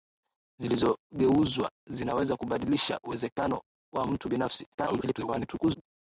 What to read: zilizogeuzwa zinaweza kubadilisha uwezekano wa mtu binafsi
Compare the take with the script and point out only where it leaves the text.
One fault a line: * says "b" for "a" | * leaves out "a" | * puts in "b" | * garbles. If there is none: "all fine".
* garbles